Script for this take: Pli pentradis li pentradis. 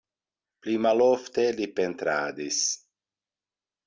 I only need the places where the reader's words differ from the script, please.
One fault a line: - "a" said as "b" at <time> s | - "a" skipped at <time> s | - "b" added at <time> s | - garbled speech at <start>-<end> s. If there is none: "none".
- "pentradis" said as "malofte" at 0.8 s